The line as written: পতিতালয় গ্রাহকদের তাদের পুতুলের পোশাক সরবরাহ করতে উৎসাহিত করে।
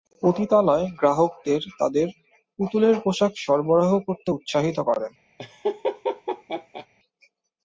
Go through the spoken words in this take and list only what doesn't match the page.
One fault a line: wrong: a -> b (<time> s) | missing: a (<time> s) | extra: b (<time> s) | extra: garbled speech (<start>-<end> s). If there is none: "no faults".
no faults